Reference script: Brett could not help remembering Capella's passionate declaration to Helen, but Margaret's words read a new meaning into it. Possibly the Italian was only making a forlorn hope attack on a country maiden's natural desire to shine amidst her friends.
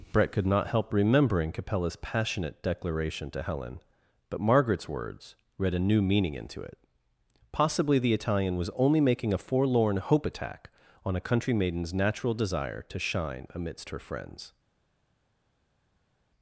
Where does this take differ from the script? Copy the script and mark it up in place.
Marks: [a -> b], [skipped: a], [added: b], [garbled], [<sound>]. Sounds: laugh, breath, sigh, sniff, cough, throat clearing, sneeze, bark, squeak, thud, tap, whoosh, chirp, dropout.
Brett could not help remembering Capella's passionate declaration to Helen, but Margaret's words read a new meaning into it. Possibly the Italian was only making a forlorn hope attack on a country maiden's natural desire to shine amidst her friends.